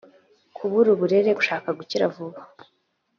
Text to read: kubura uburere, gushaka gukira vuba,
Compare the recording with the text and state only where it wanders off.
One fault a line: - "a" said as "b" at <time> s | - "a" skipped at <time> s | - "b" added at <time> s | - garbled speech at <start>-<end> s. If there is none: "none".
none